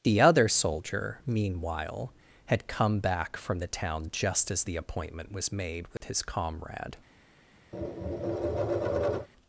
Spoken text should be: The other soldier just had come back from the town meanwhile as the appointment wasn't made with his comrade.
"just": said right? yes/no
no